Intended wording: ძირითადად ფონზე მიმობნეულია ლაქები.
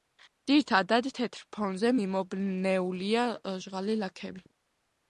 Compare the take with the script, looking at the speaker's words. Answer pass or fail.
fail